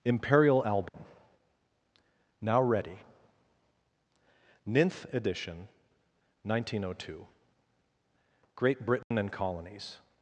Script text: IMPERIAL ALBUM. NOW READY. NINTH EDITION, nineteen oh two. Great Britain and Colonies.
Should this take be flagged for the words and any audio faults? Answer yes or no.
yes